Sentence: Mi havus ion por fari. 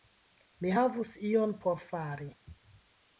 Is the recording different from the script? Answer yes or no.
no